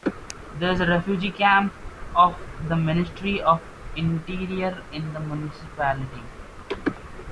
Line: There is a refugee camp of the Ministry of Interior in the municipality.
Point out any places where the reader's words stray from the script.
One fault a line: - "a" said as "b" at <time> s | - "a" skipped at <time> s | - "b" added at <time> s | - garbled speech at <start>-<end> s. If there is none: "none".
none